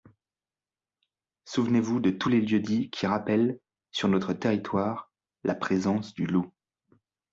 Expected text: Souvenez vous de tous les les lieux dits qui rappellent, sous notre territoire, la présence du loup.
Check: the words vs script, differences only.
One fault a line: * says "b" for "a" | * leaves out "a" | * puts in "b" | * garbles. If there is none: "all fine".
* leaves out "les"
* says "sur" for "sous"